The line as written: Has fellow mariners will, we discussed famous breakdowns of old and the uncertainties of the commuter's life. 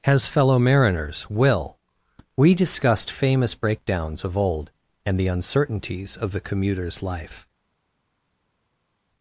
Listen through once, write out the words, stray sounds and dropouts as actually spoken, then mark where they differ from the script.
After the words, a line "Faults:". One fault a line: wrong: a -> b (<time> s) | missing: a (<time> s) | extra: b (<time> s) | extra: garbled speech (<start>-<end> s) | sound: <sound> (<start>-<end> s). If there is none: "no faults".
Has fellow mariners will, we discussed famous breakdowns of old and the uncertainties of the commuter's life.
Faults:
no faults